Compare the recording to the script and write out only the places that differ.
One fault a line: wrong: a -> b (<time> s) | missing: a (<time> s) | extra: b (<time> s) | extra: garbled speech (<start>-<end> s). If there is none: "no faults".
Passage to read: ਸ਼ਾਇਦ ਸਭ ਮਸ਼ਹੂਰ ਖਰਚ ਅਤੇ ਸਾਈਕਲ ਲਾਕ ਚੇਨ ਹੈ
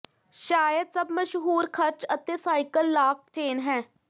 no faults